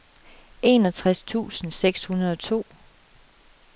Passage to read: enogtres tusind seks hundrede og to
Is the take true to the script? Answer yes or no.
yes